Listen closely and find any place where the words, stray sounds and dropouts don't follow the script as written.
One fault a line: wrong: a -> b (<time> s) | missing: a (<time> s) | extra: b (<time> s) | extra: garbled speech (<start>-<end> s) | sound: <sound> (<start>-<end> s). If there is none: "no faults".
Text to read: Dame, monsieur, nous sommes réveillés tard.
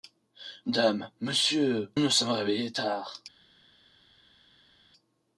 no faults